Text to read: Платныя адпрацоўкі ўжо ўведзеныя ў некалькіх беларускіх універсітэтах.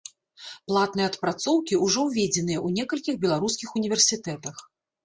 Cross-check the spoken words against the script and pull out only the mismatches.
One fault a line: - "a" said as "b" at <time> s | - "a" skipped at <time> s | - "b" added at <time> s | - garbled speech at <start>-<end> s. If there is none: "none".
none